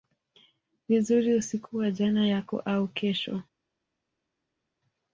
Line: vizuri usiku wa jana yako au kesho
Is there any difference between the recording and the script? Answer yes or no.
no